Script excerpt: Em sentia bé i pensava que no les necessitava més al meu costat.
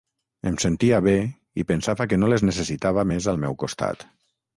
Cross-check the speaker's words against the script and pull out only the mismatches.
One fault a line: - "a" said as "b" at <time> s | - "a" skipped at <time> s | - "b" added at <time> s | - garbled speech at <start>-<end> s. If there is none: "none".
none